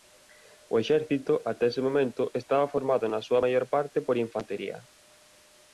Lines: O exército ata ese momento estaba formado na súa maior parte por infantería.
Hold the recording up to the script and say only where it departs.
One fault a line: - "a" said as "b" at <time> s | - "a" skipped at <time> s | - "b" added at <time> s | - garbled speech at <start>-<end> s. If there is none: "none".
none